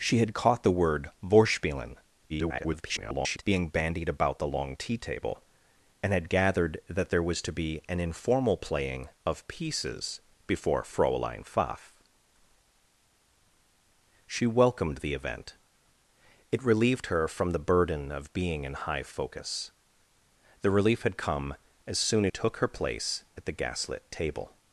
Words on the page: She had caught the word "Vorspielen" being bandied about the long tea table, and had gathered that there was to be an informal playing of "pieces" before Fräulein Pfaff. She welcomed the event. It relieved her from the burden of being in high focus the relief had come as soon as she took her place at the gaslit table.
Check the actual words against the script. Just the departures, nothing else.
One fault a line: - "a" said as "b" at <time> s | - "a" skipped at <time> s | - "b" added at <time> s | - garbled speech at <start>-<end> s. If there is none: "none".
- garbled speech at 2.3-3.4 s
- "she" skipped at 22.3 s